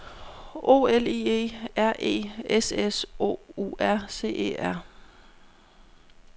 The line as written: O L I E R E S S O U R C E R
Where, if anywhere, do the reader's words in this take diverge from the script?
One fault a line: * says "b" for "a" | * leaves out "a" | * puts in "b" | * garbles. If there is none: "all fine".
all fine